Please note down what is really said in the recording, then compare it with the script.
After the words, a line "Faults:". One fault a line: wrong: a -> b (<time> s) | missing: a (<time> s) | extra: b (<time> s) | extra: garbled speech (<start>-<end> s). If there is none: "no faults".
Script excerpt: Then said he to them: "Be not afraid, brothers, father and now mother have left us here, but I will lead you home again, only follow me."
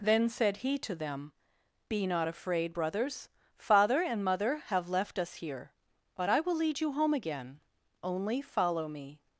Then said he to them: "Be not afraid, brothers, father and mother have left us here, but I will lead you home again, only follow me."
Faults:
missing: now (4.2 s)